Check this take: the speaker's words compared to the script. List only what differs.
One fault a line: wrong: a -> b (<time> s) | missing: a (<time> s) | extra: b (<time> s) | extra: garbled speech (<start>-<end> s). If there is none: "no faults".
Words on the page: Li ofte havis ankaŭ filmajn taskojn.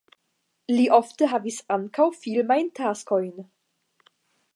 no faults